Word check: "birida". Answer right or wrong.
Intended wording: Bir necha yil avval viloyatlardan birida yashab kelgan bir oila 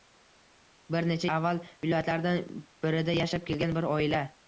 right